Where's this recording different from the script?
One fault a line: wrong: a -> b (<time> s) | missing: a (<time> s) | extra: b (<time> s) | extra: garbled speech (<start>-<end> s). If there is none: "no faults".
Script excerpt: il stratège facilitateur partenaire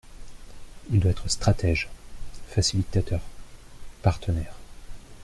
extra: doit être (1.0 s)